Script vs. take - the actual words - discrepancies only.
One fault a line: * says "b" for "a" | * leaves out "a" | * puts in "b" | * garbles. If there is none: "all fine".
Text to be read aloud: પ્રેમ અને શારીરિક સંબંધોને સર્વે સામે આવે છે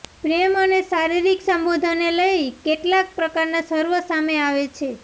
* puts in "લઈ કેટલાક પ્રકારના"